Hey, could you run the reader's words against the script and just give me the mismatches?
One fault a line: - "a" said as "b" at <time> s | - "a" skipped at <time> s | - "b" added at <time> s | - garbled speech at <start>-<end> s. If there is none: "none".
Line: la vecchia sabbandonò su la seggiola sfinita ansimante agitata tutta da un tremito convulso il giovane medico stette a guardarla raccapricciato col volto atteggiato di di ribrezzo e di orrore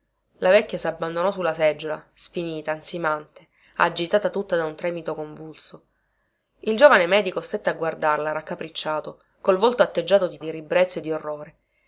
none